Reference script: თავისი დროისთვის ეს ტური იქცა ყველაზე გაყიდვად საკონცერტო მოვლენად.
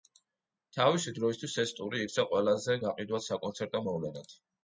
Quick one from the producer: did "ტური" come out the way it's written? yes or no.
yes